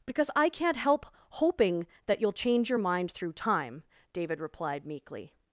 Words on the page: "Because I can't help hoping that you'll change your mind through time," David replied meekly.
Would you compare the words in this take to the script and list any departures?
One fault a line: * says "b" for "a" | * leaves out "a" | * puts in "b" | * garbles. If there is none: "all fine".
all fine